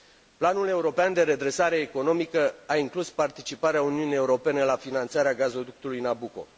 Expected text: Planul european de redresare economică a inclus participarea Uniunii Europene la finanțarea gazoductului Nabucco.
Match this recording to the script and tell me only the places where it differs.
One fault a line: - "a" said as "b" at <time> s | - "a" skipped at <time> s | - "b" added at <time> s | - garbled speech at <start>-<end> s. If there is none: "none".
none